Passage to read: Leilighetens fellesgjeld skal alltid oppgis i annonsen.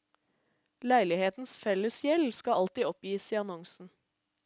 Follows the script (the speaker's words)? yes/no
yes